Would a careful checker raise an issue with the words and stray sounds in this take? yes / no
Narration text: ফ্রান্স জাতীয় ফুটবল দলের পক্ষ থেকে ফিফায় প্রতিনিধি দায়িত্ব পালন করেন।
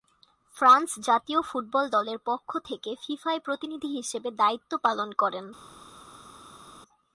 yes